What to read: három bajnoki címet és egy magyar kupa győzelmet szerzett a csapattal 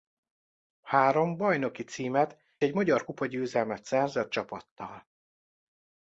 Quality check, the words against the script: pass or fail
fail